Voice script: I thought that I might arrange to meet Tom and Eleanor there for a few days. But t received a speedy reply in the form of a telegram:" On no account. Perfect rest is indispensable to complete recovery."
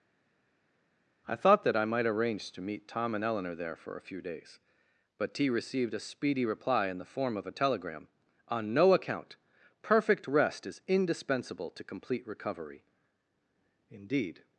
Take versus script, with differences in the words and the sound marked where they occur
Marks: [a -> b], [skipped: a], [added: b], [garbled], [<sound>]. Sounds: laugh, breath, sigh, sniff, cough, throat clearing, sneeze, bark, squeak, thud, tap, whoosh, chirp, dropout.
I thought that I might arrange to meet Tom and Eleanor there for a few days. But t received a speedy reply in the form of a telegram:" On no account. Perfect rest is indispensable to complete recovery." [added: Indeed]